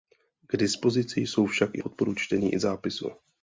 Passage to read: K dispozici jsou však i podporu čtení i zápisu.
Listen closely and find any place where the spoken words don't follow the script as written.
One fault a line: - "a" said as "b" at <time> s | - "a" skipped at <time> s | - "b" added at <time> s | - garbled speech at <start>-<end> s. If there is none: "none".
none